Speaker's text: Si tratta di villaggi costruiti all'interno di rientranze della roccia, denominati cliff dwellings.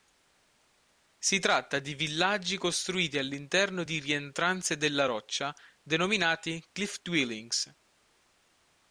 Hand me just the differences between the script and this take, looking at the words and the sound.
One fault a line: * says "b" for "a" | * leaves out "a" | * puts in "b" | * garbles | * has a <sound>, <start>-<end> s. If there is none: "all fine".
all fine